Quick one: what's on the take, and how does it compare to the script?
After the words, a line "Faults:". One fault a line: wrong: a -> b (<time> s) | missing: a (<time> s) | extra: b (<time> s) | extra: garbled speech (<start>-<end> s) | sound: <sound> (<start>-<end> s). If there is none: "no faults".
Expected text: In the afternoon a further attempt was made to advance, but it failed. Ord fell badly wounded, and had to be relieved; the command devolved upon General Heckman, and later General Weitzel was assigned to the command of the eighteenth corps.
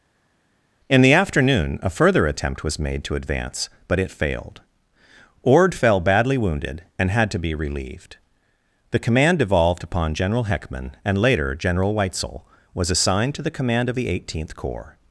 In the afternoon a further attempt was made to advance, but it failed. Ord fell badly wounded, and had to be relieved; the command devolved upon General Heckman, and later General Weitzel was assigned to the command of the eighteenth corps.
Faults:
no faults